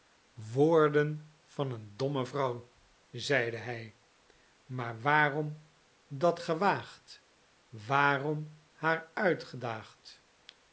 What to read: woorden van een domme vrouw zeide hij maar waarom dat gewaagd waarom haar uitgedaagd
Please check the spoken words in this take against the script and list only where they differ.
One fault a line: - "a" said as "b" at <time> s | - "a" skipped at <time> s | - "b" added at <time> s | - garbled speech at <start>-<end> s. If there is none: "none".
none